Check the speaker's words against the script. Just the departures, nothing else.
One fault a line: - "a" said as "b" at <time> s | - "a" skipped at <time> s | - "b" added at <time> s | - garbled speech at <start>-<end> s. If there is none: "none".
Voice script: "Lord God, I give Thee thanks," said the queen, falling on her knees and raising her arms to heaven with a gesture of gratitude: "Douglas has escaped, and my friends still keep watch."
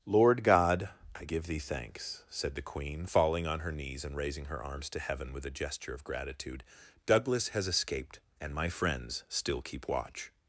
none